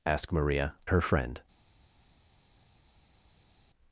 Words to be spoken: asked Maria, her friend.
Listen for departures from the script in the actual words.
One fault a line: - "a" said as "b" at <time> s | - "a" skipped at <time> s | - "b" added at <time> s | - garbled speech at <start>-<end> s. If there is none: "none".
none